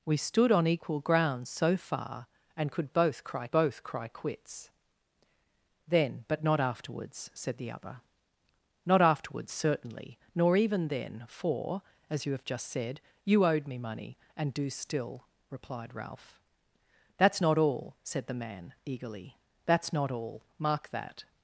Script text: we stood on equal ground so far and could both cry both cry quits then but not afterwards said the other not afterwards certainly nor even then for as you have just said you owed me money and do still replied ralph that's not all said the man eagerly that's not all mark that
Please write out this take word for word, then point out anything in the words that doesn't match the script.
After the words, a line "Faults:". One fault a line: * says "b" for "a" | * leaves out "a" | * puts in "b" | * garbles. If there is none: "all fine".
we stood on equal ground so far and could both cry both cry quits then but not afterwards said the other not afterwards certainly nor even then for as you have just said you owed me money and do still replied ralph that's not all said the man eagerly that's not all mark that
Faults:
all fine